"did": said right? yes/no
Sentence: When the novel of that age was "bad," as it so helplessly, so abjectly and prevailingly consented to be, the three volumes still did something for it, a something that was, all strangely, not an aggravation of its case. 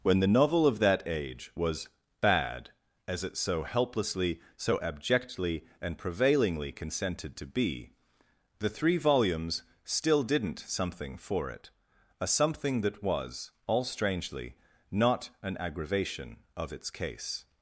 no